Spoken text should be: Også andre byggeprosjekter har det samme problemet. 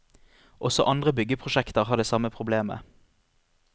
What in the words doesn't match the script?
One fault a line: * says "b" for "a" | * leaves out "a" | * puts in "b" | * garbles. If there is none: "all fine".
all fine